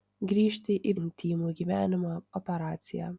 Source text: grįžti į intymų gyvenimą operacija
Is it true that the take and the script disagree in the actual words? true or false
false